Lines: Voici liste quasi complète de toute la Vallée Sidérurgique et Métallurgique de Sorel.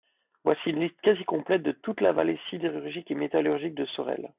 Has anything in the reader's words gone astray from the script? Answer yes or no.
yes